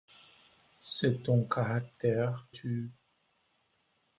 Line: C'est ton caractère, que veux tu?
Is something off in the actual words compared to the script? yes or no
yes